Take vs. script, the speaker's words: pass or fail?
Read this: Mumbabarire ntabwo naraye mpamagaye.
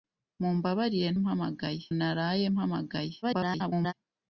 fail